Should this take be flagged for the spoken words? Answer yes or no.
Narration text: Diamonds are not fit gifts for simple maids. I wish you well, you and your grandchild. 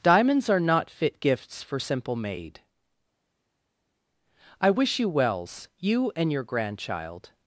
yes